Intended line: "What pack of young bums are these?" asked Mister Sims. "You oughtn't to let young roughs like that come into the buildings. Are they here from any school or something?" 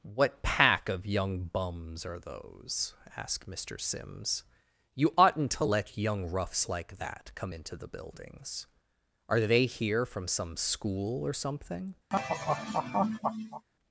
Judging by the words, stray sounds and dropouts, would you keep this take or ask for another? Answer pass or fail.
fail